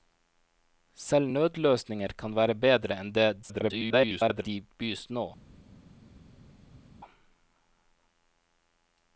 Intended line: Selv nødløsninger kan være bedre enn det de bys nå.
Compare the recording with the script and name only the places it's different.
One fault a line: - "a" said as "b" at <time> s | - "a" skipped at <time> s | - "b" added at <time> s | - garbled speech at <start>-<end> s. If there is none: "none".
- garbled speech at 3.4-4.5 s